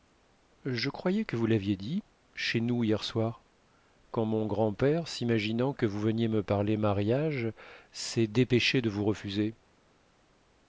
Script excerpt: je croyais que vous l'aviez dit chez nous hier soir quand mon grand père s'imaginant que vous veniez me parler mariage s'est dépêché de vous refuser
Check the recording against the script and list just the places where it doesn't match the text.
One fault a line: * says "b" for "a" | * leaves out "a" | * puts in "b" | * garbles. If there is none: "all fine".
all fine